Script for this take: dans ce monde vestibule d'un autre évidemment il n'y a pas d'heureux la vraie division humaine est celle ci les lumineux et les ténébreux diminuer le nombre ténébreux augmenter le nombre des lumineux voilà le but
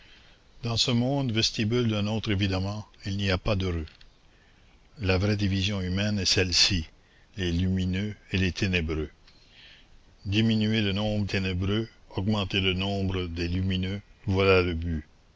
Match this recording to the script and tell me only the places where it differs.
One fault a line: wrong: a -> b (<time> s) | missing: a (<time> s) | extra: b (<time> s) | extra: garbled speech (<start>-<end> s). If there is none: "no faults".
no faults